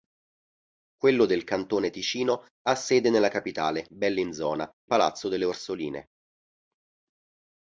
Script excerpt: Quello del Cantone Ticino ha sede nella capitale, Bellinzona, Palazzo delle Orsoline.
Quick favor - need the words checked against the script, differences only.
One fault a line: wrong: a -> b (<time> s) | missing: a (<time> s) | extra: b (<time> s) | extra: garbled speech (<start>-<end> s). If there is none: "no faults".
no faults